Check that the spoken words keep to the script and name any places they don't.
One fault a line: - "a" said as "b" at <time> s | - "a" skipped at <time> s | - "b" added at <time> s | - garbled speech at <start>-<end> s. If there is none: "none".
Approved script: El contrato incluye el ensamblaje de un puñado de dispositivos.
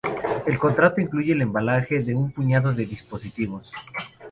none